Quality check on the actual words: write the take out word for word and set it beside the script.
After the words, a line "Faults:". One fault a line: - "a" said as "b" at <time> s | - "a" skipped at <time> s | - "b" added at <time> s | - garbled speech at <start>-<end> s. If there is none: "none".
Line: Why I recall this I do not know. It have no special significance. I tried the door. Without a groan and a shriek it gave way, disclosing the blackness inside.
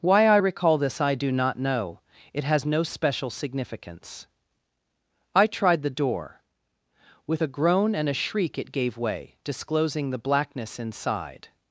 Why I recall this I do not know. It has no special significance. I tried the door. With a groan and a shriek it gave way, disclosing the blackness inside.
Faults:
- "have" said as "has" at 2.5 s
- "Without" said as "With" at 7.3 s